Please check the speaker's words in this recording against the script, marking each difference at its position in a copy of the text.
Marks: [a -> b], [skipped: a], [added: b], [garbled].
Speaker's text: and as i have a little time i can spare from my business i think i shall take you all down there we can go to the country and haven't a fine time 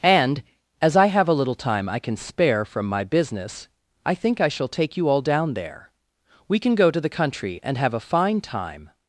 and as i have a little time i can spare from my business i think i shall take you all down there we can go to the country and [haven't -> have] a fine time